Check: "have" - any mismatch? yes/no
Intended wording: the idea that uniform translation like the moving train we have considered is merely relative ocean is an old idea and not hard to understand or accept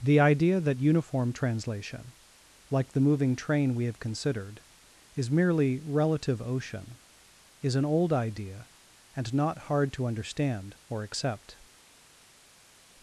no